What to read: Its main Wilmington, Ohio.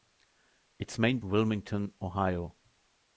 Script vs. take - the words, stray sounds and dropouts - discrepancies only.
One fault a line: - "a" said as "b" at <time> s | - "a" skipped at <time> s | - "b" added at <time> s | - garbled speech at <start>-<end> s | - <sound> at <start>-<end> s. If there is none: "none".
none